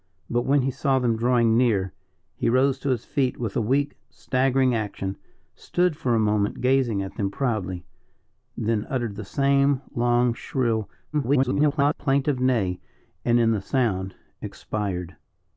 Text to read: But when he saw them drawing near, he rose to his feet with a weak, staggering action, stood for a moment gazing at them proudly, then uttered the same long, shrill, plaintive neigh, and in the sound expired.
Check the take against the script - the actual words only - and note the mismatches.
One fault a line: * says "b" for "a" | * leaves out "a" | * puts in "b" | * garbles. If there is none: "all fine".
* garbles